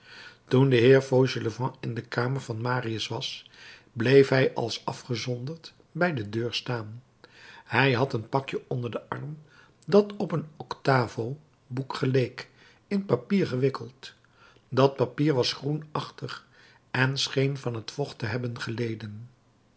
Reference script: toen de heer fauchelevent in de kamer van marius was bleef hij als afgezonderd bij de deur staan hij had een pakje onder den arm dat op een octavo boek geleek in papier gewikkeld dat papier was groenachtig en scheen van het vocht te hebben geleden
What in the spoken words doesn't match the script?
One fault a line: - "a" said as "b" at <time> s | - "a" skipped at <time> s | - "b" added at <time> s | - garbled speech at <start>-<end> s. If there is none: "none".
none